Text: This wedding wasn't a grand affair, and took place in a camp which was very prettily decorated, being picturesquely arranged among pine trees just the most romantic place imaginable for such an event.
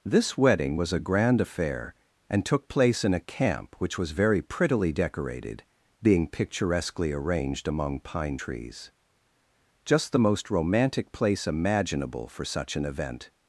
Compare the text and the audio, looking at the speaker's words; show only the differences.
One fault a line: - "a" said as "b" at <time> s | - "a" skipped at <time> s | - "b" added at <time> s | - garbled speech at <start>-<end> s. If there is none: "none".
- "wasn't" said as "was" at 0.8 s